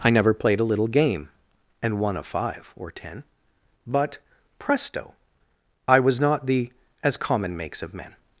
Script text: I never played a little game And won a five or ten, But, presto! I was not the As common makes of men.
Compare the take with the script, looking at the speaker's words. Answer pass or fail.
pass